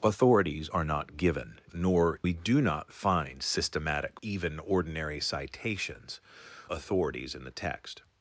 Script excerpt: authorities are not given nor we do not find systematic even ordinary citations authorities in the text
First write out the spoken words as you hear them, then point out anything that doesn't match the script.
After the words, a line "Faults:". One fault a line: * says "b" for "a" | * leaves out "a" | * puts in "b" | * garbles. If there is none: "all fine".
authorities are not given nor we do not find systematic even ordinary citations authorities in the text
Faults:
all fine